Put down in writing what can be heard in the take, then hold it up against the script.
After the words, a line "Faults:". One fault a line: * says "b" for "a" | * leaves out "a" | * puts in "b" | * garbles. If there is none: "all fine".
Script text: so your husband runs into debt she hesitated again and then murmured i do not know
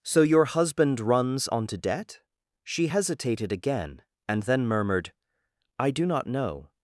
so your husband runs onto debt she hesitated again and then murmured i do not know
Faults:
* says "onto" for "into"